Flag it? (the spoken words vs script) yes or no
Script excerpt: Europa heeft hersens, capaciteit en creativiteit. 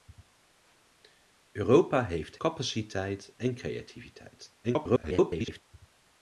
yes